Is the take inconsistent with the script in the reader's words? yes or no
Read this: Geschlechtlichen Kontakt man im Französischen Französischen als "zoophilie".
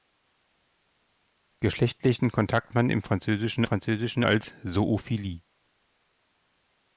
no